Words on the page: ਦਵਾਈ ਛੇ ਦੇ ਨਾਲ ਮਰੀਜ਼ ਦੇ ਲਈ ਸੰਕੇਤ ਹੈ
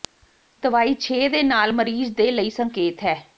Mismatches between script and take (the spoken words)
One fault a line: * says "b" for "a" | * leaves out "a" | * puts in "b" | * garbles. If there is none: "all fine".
all fine